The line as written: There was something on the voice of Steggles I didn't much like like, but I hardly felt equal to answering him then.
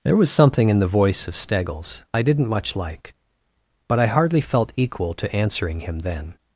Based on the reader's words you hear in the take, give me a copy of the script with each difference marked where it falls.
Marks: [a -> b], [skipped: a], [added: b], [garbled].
There was something [on -> in] the voice of Steggles I didn't much like [skipped: like,] but I hardly felt equal to answering him then.